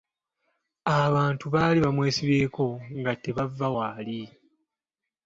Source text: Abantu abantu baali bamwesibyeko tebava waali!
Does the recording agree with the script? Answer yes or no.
no